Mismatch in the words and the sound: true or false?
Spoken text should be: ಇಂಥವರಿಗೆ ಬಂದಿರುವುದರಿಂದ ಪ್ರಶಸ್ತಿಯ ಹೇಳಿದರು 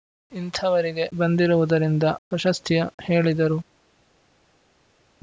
false